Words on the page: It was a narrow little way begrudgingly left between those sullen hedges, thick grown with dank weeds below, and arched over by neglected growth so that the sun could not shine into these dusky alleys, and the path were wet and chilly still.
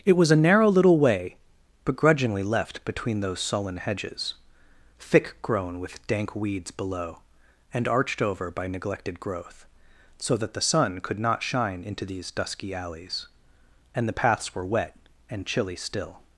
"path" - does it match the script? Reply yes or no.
no